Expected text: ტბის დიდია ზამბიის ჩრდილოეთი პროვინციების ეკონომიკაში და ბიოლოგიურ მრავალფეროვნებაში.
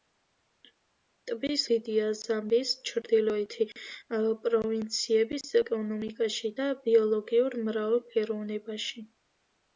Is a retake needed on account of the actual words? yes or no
no